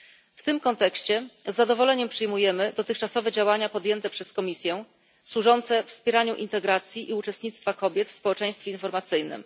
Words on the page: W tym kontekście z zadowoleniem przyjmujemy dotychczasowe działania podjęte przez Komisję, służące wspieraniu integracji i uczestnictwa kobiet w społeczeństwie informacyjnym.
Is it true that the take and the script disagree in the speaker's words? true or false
false